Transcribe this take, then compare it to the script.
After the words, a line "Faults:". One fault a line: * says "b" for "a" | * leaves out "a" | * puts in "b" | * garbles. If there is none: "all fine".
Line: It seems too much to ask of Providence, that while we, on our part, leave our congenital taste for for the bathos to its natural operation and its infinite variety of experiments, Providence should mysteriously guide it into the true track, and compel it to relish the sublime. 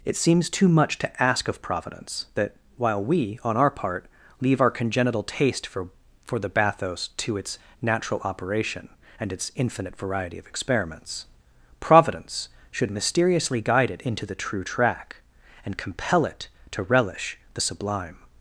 It seems too much to ask of Providence, that while we, on our part, leave our congenital taste for for the bathos to its natural operation and its infinite variety of experiments, Providence should mysteriously guide it into the true track, and compel it to relish the sublime.
Faults:
all fine